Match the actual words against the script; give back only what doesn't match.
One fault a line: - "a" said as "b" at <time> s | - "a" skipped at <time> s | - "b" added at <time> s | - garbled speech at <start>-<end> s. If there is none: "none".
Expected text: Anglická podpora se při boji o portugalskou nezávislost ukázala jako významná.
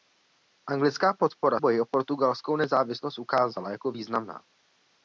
- "se při" skipped at 1.6 s